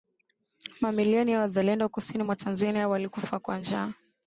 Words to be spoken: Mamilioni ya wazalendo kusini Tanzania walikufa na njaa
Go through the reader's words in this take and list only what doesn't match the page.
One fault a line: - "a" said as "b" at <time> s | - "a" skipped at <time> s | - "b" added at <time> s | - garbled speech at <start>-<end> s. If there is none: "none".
- "mwa" added at 2.2 s
- "na" said as "kwa" at 3.4 s